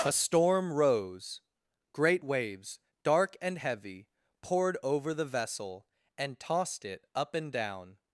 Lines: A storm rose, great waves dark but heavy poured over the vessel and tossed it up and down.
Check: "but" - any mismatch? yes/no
yes